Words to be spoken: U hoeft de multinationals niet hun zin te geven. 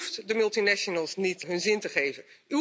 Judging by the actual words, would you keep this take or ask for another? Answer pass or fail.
pass